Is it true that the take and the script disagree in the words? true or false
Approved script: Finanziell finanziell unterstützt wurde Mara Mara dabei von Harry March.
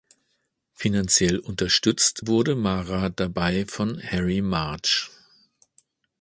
true